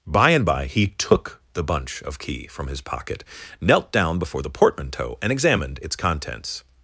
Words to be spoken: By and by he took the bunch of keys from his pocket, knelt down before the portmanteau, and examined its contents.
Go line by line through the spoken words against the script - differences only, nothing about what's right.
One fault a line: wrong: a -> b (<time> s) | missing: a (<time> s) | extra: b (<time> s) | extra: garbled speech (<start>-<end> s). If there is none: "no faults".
wrong: keys -> key (2.2 s)